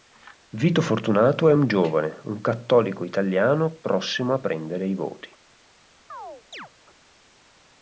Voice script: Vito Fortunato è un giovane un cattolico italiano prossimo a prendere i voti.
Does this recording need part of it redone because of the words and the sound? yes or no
yes